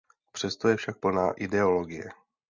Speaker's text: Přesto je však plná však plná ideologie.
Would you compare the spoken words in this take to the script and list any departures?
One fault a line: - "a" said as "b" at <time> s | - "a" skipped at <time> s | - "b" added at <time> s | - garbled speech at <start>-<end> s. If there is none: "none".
- "však plná" skipped at 1.3 s